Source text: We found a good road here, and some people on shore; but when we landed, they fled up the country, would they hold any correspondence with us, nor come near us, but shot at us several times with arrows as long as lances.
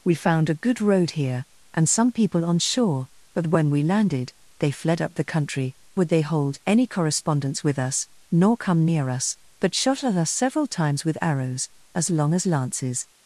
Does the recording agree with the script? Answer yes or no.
yes